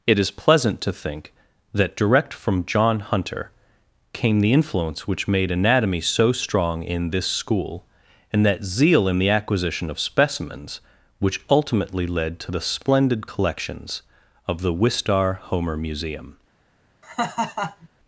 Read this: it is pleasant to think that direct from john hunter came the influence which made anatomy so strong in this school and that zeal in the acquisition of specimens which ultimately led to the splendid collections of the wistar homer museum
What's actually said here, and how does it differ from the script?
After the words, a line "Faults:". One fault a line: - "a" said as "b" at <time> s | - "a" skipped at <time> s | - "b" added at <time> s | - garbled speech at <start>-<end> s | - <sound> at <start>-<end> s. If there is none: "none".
it is pleasant to think that direct from john hunter came the influence which made anatomy so strong in this school and that zeal in the acquisition of specimens which ultimately led to the splendid collections of the wistar homer museum
Faults:
- laugh at 17.0-17.9 s